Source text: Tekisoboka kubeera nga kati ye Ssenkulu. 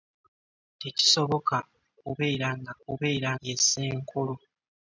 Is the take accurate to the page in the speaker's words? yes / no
no